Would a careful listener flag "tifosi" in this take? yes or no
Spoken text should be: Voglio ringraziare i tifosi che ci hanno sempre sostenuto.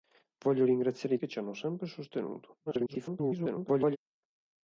yes